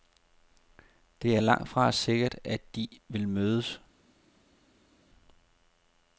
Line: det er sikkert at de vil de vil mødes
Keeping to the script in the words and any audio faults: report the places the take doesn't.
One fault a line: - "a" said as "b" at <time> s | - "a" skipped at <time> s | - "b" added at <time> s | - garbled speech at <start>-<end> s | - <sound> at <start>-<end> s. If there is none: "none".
- "langtfra" added at 1.4 s
- "de vil" skipped at 3.3 s